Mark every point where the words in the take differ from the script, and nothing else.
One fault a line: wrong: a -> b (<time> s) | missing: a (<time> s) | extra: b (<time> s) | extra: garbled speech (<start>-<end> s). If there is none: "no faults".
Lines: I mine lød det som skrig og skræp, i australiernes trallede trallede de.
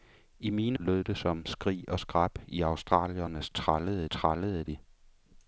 no faults